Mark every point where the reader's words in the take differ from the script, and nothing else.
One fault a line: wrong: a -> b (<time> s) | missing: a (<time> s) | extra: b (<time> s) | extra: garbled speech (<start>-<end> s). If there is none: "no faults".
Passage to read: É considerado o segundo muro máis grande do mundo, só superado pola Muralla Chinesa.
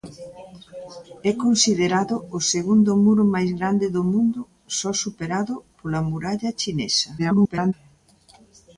extra: garbled speech (7.2-7.7 s)